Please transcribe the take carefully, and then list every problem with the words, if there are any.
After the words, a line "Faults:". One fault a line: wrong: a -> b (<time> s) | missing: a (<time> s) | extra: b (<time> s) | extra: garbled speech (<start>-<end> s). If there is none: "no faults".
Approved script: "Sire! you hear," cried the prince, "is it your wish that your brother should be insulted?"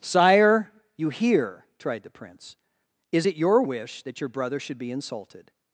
"Sire! you hear," tried the prince, "is it your wish that your brother should be insulted?"
Faults:
wrong: cried -> tried (1.8 s)